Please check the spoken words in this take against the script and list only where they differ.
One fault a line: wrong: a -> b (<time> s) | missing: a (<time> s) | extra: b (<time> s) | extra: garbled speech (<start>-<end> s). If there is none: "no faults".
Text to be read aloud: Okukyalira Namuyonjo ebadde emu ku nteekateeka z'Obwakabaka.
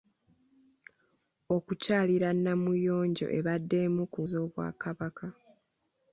missing: nteekateeka (4.2 s)